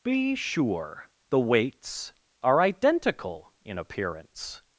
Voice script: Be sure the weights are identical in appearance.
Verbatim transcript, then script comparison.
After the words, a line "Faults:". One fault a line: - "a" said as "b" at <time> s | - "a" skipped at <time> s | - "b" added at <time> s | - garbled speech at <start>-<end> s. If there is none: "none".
Be sure the weights are identical in appearance.
Faults:
none